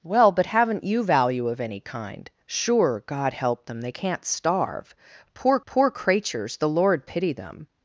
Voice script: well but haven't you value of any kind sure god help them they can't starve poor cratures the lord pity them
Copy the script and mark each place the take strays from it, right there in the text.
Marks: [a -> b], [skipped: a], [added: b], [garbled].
well but haven't you value of any kind sure god help them they can't starve poor [added: poor] cratures the lord pity them